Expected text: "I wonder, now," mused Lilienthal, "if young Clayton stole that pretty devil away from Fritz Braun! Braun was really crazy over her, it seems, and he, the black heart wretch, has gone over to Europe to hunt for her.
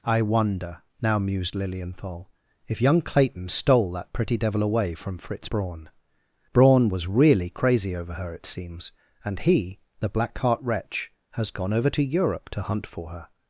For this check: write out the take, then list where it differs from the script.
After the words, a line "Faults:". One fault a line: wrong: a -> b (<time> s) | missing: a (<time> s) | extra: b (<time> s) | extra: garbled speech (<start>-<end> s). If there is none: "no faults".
"I wonder, now," mused Lilienthal, "if young Clayton stole that pretty devil away from Fritz Braun! Braun was really crazy over her, it seems, and he, the black heart wretch, has gone over to Europe to hunt for her.
Faults:
no faults